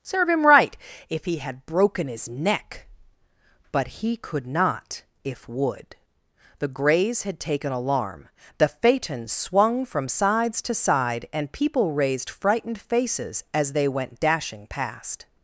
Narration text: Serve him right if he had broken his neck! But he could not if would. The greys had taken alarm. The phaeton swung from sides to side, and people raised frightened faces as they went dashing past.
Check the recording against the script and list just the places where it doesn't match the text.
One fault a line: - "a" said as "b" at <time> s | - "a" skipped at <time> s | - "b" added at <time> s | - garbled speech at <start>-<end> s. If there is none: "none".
none